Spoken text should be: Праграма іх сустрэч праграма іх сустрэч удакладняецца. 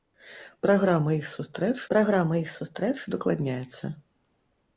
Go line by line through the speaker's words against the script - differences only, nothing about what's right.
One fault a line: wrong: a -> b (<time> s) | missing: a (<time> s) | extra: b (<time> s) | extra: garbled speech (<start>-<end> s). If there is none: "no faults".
no faults